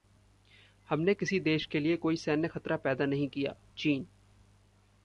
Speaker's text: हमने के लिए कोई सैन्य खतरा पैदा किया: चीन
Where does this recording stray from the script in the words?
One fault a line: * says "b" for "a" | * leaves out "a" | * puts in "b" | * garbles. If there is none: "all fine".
* puts in "किसी देश"
* puts in "नहीं"